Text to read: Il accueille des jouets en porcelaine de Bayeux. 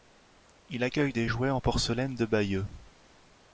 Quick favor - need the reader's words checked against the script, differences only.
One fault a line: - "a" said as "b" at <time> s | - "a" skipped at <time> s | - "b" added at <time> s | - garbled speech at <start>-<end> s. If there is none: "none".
none